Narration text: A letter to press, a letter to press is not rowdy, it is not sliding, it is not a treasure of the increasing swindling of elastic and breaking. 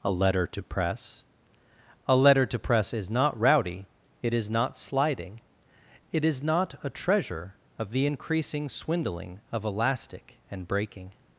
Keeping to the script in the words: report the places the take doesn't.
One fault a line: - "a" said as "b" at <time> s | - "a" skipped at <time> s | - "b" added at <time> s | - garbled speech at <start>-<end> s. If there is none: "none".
none